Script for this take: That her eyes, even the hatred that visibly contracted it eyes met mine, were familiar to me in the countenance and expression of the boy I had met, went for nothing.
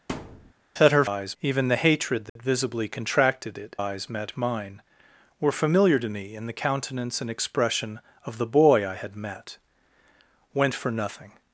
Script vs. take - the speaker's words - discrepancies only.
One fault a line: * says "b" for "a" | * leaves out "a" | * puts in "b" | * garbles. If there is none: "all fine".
all fine